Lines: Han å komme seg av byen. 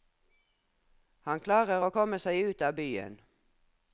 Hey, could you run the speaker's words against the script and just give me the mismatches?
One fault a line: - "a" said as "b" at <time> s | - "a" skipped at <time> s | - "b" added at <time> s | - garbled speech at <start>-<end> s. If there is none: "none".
- "klarer" added at 1.4 s
- "ut" added at 2.5 s